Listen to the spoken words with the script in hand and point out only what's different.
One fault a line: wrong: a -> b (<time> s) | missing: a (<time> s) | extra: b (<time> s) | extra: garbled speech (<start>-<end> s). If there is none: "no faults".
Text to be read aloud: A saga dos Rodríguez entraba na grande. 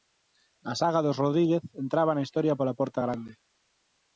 extra: historia pola porta (2.2 s)